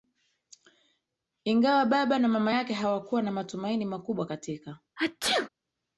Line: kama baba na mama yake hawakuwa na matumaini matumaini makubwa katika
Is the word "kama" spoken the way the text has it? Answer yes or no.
no